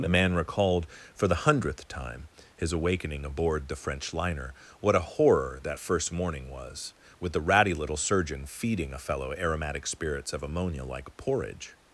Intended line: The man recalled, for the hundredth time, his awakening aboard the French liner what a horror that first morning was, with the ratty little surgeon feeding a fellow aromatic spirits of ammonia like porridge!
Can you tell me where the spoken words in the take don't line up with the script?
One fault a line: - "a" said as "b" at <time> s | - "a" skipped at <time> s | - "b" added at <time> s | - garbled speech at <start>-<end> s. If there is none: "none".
none